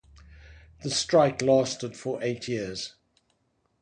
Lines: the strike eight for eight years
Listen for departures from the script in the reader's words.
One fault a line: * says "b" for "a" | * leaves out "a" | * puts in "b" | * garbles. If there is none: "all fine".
* says "lasted" for "eight"